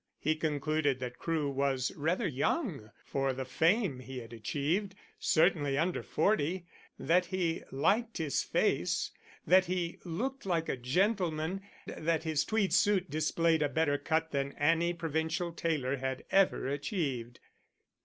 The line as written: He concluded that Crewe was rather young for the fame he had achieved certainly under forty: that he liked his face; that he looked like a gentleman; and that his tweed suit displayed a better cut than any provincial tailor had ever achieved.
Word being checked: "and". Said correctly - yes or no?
no